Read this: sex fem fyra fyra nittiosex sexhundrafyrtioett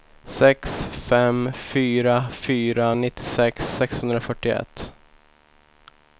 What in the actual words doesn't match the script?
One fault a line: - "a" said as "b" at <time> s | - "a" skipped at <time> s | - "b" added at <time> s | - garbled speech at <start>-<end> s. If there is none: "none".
none